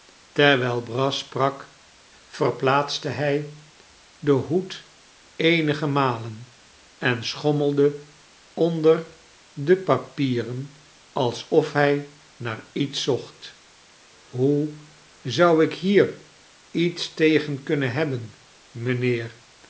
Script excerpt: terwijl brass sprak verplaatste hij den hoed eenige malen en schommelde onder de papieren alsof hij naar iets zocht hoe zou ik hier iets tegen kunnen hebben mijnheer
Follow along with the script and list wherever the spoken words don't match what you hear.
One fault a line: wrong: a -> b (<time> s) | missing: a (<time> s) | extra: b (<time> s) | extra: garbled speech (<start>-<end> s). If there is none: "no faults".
no faults